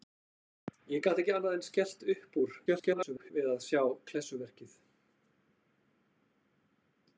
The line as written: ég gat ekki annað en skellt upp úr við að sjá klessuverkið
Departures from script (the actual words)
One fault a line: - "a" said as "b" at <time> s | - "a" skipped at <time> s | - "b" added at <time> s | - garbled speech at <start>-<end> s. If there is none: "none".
- garbled speech at 2.7-3.3 s